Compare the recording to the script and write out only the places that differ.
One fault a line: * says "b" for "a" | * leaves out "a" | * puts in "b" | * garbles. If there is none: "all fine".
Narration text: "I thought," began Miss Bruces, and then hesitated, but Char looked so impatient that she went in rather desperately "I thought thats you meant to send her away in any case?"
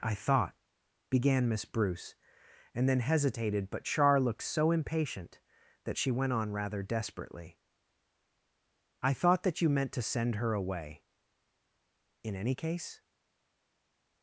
* says "Bruce" for "Bruces"
* says "on" for "in"
* says "that" for "thats"